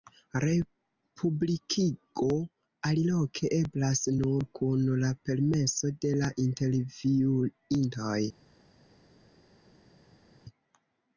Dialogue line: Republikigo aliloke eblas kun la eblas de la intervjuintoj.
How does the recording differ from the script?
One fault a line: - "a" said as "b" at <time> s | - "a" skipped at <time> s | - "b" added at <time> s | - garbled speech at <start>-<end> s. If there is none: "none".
- "nur" added at 4.2 s
- "eblas" said as "permeso" at 5.3 s